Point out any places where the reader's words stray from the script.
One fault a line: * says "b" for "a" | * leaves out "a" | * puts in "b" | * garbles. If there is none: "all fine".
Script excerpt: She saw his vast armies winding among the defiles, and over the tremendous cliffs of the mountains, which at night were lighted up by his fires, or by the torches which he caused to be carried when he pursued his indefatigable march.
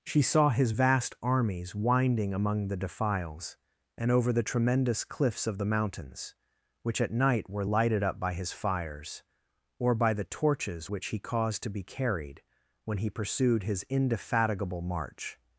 all fine